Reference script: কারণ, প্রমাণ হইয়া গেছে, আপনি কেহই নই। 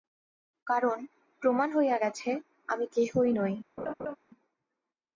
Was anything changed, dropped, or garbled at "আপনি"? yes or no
yes